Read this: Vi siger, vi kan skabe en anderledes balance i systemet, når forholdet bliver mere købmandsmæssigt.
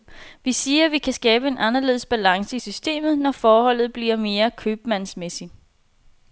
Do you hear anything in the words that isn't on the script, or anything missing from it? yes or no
no